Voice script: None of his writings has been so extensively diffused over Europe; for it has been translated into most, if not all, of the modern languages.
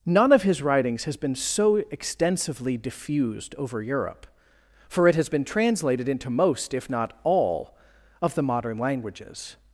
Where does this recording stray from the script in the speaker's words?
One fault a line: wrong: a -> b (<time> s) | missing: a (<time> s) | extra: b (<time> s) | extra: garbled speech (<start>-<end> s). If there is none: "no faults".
no faults